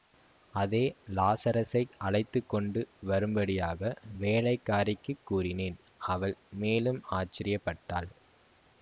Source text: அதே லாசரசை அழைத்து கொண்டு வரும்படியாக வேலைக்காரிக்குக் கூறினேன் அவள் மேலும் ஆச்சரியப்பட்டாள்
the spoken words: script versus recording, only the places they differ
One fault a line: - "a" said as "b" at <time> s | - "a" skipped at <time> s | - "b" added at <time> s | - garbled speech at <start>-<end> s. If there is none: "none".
none